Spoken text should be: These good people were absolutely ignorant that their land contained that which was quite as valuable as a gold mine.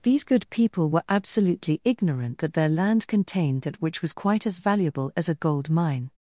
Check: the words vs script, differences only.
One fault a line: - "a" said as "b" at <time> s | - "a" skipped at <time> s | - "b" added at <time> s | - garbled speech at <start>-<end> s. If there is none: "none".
none